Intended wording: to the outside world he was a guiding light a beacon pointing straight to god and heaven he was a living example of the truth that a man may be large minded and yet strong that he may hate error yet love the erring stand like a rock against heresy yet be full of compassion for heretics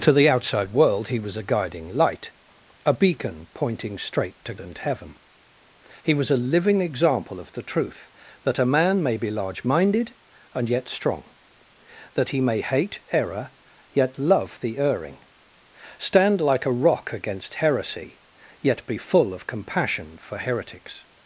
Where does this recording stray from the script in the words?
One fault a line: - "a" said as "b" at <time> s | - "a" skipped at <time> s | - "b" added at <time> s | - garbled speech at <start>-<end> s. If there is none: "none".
- "god" skipped at 4.5 s